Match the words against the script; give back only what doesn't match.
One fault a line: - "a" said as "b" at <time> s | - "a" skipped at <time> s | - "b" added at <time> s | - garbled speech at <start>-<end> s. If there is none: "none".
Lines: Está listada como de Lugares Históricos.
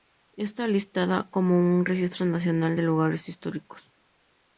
- "un Registro Nacional" added at 1.6 s